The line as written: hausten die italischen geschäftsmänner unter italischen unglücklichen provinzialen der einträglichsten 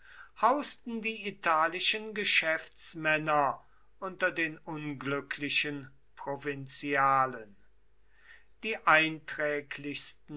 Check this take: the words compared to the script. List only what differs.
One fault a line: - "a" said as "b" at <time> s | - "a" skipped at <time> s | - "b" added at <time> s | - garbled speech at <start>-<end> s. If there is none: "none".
- "italischen" said as "den" at 4.3 s
- "der" said as "die" at 8.6 s